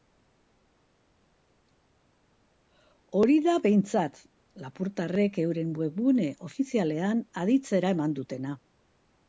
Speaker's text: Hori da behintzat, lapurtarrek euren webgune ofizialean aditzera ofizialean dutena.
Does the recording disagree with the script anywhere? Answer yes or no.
yes